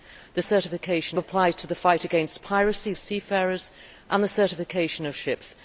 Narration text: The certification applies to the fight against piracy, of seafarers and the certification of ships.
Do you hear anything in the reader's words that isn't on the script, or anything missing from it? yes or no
no